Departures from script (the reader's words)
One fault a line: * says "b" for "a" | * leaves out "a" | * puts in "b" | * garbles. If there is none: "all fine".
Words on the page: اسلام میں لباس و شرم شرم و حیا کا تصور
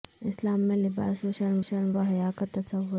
all fine